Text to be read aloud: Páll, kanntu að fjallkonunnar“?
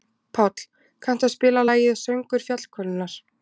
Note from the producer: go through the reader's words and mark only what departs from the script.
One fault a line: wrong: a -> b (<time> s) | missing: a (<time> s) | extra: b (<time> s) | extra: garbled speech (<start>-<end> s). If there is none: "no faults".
extra: spila lagið Söngur (1.4 s)